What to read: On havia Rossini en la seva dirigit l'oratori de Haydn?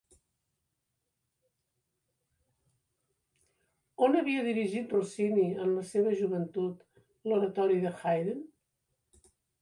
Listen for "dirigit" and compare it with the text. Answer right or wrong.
wrong